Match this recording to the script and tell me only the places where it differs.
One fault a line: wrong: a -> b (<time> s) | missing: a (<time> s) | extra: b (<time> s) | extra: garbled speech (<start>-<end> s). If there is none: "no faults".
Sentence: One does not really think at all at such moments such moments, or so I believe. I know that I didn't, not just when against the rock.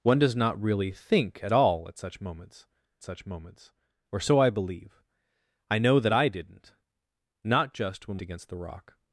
no faults